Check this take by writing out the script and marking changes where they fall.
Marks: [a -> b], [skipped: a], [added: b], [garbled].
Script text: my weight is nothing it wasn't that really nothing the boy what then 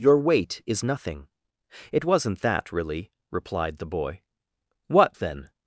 [my -> your] weight is nothing it wasn't that really [nothing -> replied] the boy what then